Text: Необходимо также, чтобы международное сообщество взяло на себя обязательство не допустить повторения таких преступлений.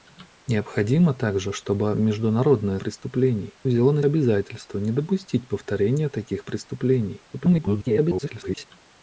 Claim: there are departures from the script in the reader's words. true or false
true